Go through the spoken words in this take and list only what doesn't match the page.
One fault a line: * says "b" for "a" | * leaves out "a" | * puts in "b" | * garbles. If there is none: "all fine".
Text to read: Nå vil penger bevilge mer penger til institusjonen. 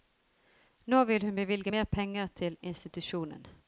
* says "hun" for "penger"